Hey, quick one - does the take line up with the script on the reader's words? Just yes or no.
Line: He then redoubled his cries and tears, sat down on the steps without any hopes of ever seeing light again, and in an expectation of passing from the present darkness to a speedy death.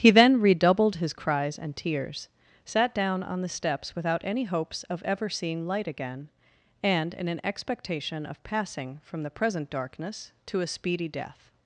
yes